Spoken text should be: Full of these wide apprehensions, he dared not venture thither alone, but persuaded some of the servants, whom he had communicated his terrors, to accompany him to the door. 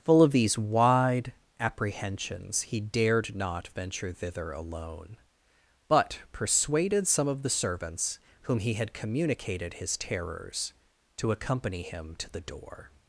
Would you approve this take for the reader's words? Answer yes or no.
yes